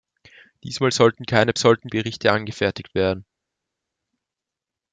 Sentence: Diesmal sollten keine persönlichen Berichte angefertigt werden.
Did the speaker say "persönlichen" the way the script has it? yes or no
no